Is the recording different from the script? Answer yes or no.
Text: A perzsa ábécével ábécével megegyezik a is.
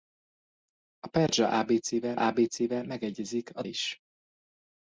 no